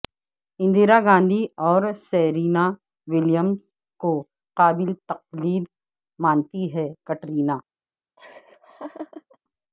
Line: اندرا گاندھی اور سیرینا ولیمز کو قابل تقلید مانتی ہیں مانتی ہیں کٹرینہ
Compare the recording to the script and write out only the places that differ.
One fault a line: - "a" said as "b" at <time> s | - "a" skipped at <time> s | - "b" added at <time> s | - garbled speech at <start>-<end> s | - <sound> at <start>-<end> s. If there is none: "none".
- "مانتی ہیں" skipped at 6.9 s
- laugh at 8.2-9.4 s